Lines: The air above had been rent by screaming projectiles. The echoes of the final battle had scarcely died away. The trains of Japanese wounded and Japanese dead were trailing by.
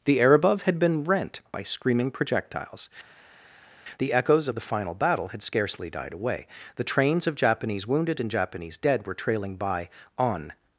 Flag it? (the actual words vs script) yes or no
yes